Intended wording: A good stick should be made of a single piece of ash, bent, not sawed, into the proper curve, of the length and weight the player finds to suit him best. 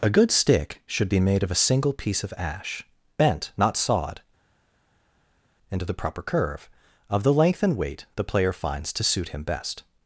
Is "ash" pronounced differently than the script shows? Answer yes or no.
no